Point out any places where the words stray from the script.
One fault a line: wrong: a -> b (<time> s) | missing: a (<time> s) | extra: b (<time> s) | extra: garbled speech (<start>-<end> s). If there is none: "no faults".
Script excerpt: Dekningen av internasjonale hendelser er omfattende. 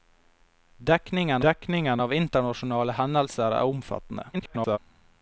extra: dekningen (1.4 s)
extra: garbled speech (4.3-4.8 s)